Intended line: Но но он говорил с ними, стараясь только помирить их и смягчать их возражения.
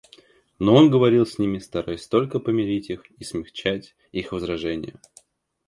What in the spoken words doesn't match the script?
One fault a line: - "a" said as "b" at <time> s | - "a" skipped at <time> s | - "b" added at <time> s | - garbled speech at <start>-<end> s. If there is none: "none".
- "но" skipped at 0.7 s